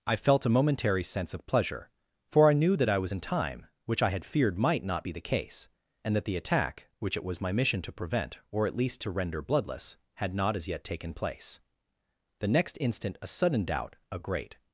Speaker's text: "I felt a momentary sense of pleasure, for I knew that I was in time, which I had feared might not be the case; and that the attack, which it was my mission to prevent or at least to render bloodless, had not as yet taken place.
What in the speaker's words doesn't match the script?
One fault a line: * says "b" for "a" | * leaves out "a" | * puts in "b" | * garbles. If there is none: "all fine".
* puts in "The next instant a sudden doubt a great"